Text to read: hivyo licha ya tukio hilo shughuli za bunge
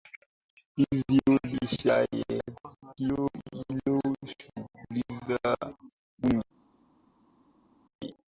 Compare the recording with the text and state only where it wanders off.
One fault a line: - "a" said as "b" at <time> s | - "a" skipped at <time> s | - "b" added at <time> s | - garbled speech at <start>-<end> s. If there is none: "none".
none